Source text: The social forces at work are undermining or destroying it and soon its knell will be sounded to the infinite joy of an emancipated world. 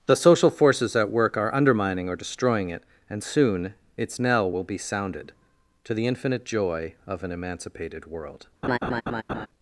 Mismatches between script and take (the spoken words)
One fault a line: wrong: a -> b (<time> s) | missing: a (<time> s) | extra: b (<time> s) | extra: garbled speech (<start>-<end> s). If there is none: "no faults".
no faults